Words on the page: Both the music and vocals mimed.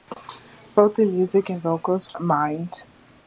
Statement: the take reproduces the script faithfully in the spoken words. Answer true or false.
true